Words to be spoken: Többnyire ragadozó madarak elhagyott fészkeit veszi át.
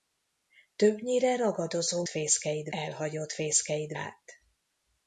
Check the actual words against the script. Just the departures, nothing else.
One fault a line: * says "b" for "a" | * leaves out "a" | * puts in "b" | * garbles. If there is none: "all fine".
* says "fészkeit" for "madarak"
* leaves out "veszi"